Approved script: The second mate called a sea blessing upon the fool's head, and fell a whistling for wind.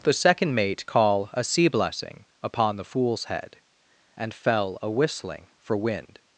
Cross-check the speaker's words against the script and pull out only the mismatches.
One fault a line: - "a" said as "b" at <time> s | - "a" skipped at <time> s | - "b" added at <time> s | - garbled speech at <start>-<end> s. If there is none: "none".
- "called" said as "call" at 0.9 s